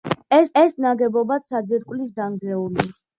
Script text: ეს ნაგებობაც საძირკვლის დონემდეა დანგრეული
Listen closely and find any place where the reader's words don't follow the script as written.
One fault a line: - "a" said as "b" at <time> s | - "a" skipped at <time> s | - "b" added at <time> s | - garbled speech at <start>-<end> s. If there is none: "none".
- "ეს" added at 0.6 s
- "დონემდეა" skipped at 2.2 s